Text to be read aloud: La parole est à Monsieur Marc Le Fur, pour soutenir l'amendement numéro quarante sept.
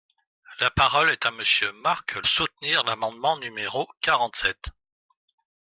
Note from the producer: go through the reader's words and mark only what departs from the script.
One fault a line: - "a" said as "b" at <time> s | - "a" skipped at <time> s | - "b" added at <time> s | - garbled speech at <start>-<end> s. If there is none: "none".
- "Le Fur pour" skipped at 2.2 s